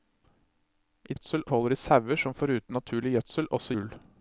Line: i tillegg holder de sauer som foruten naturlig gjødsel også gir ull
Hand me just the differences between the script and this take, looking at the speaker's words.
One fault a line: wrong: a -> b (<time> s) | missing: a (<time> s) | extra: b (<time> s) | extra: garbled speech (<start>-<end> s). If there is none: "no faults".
wrong: tillegg -> gjødsel (1.1 s)
missing: gir (3.8 s)